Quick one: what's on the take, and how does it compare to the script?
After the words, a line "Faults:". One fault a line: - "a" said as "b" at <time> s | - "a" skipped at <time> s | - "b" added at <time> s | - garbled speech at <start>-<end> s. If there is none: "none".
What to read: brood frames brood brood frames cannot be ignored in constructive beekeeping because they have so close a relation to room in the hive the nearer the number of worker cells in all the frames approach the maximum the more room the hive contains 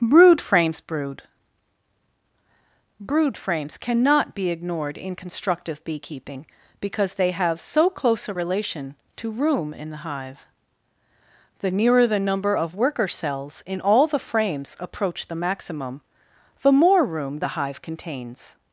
brood frames brood brood frames cannot be ignored in constructive beekeeping because they have so close a relation to room in the hive the nearer the number of worker cells in all the frames approach the maximum the more room the hive contains
Faults:
none